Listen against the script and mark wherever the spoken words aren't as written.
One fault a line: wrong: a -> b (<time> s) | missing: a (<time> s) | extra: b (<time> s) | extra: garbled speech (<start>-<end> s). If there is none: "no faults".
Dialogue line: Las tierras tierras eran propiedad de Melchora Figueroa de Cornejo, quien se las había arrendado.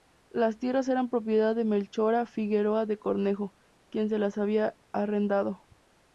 missing: tierras (0.9 s)